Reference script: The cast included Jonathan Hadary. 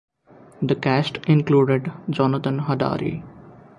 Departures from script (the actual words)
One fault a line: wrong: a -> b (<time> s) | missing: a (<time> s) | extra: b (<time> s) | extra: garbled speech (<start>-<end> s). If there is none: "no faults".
no faults